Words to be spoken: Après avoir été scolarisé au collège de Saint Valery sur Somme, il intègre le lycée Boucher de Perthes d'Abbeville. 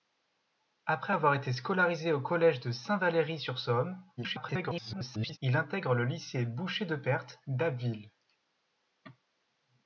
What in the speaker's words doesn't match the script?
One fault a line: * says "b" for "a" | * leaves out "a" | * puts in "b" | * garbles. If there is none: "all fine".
* garbles